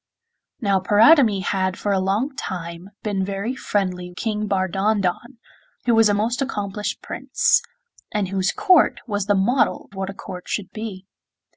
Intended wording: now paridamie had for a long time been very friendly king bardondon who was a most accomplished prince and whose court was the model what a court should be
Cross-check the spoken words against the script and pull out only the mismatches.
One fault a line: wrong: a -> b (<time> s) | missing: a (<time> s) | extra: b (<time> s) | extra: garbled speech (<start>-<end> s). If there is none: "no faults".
no faults